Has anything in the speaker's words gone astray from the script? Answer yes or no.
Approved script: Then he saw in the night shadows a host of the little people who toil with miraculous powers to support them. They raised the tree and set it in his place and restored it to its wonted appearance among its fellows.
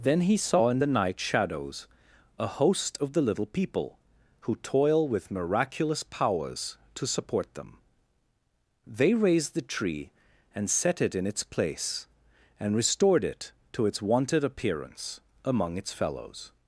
yes